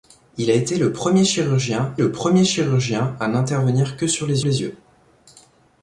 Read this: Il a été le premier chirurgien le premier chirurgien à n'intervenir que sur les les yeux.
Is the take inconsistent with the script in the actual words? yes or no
no